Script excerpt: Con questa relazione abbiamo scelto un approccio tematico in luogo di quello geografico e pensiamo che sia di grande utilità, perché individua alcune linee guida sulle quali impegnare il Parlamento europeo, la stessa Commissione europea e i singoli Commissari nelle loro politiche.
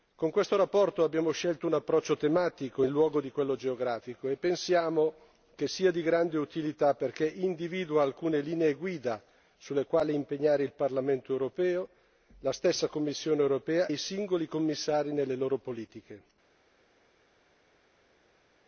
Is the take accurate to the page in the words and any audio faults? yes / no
no